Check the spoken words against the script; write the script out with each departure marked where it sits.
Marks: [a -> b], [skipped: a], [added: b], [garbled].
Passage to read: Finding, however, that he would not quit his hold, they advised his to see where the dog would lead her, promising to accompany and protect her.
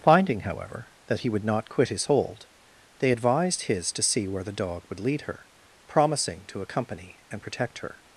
Finding, however, that he would not quit his hold, they advised his to see where the dog would lead her, promising to accompany and protect her.